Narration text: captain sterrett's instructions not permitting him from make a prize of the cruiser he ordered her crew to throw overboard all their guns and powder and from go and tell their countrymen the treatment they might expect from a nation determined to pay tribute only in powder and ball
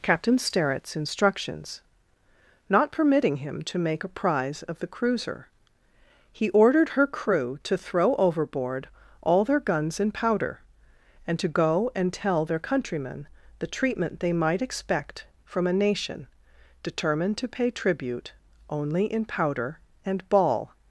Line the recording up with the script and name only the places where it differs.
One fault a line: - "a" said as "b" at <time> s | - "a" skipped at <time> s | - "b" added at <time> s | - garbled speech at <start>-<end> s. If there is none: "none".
- "from" said as "to" at 3.6 s
- "from" said as "to" at 11.4 s